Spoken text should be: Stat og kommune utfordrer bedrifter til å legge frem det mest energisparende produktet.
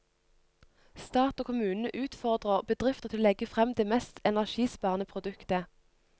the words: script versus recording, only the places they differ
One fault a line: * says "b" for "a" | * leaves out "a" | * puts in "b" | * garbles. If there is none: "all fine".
all fine